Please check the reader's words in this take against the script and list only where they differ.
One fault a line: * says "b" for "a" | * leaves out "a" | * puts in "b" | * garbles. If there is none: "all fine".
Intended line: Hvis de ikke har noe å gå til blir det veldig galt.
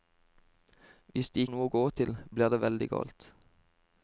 * leaves out "ikke"